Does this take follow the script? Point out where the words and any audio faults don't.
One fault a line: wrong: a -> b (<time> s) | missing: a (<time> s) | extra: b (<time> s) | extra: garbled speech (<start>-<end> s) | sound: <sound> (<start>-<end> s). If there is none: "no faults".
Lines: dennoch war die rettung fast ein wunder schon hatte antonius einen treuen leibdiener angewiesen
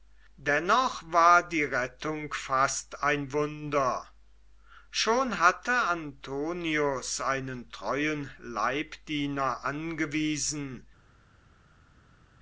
no faults